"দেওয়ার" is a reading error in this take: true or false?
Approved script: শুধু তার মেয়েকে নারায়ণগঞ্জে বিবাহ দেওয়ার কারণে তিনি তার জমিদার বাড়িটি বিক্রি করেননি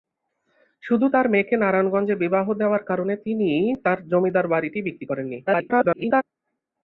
false